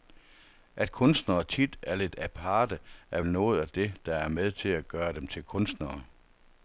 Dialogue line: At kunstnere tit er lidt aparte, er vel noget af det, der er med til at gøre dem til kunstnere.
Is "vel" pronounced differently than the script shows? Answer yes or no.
yes